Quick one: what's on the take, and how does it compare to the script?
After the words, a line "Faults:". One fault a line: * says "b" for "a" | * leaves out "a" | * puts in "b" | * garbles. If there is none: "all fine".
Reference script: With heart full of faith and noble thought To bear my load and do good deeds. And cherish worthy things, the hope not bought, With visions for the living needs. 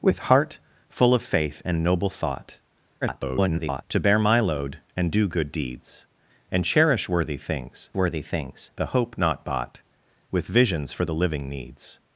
With heart full of faith and noble thought [garbled] To bear my load and do good deeds. And cherish worthy things worthy things, the hope not bought, With visions for the living needs.
Faults:
* garbles
* puts in "worthy things"